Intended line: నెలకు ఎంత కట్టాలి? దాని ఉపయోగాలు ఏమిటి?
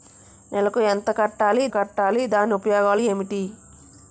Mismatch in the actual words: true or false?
true